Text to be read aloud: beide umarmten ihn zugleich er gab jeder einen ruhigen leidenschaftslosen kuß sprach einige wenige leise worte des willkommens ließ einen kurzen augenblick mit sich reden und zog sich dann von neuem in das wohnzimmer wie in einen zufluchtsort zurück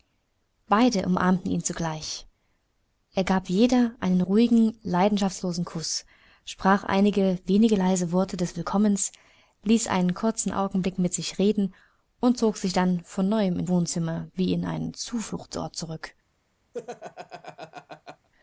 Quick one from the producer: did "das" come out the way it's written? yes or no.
no